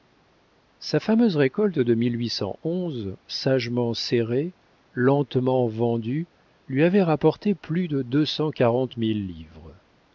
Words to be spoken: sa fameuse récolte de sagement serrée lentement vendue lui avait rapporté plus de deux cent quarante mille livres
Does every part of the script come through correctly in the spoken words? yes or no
yes